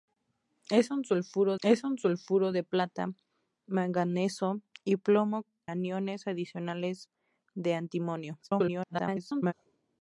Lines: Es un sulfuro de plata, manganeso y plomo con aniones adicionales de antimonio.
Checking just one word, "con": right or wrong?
wrong